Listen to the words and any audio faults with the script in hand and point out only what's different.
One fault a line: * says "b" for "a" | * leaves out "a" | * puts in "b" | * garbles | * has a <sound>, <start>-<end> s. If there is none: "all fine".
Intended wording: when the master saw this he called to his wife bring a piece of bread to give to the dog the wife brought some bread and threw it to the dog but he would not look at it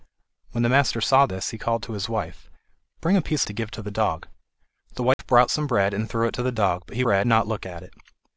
* leaves out "of bread"
* has a dropout, 5.1-5.2 s
* says "bread" for "would"